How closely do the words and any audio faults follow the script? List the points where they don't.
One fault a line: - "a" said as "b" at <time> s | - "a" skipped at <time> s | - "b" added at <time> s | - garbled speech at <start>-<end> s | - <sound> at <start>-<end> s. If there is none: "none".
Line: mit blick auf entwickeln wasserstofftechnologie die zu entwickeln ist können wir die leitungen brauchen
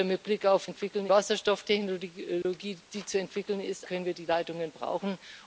- dropout at 2.4-2.5 s